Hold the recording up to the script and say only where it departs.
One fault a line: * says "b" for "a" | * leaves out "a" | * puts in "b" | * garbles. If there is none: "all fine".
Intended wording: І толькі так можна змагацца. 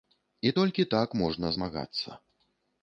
all fine